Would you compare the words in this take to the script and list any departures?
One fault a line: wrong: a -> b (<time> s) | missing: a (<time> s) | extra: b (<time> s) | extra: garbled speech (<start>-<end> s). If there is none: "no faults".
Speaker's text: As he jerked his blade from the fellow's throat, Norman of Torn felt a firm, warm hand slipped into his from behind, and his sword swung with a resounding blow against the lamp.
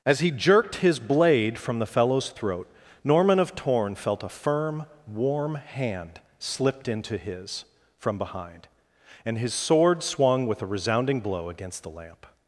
no faults